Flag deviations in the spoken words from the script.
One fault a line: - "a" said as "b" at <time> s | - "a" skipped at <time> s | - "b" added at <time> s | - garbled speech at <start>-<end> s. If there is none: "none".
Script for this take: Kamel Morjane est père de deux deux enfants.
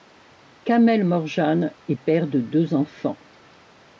- "deux" skipped at 2.7 s